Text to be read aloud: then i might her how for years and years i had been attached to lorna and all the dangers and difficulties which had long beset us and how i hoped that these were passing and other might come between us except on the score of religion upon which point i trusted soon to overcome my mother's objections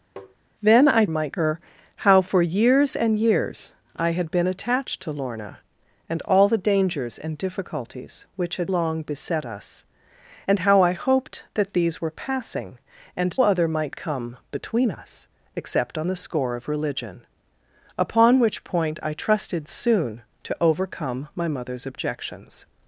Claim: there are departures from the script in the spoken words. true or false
false